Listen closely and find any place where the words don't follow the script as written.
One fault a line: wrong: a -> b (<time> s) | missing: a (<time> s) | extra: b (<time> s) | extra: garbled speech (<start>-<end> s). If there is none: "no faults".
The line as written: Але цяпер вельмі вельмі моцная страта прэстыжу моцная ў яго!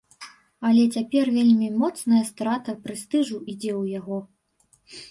missing: вельмі (1.7 s)
wrong: моцная -> ідзе (3.5 s)